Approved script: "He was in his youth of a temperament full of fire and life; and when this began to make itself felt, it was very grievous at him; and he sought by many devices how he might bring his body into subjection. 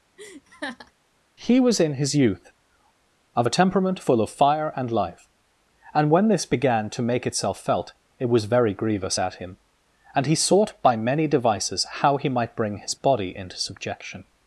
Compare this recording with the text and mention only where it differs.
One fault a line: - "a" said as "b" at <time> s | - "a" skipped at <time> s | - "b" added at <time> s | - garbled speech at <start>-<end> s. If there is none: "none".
none